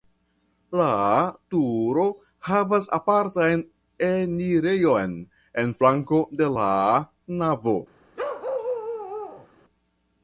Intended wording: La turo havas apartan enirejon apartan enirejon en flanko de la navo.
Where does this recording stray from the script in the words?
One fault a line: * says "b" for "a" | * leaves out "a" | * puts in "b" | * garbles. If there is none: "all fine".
* leaves out "apartan enirejon"